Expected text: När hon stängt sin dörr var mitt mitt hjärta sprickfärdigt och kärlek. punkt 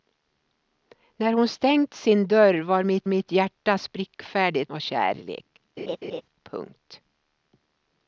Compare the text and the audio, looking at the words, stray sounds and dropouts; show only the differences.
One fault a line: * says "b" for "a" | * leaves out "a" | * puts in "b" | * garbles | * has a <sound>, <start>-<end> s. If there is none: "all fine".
* has a laugh, 5.8-6.2 s